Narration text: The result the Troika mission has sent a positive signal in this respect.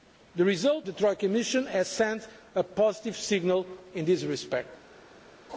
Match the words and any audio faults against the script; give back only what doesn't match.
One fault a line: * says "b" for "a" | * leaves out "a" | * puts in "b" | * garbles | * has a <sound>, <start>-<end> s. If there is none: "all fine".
all fine